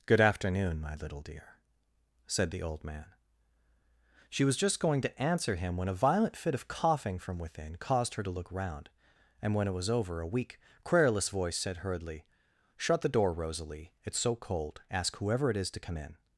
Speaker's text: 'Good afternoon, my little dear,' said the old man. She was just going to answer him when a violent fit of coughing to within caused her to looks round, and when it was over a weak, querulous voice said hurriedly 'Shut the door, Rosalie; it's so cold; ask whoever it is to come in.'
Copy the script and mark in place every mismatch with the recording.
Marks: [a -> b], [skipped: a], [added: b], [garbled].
'Good afternoon, my little dear,' said the old man. She was just going to answer him when a violent fit of coughing [to -> from] within caused her to [looks -> look] round, and when it was over a weak, querulous voice said hurriedly 'Shut the door, Rosalie; it's so cold; ask whoever it is to come in.'